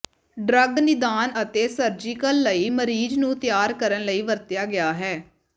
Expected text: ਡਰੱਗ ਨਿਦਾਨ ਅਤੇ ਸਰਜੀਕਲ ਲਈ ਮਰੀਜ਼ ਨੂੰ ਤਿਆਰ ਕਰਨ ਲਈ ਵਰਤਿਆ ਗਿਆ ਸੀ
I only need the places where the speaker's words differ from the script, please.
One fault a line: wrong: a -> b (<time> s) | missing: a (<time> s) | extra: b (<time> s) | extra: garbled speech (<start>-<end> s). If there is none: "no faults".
wrong: ਸੀ -> ਹੈ (4.9 s)